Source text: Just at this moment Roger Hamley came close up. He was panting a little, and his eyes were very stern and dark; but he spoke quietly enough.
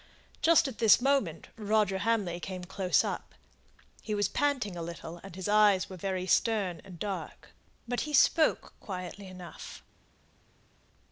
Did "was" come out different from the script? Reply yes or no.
no